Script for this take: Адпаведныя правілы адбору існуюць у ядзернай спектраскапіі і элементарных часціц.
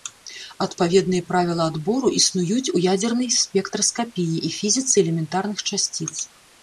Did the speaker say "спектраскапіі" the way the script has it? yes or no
yes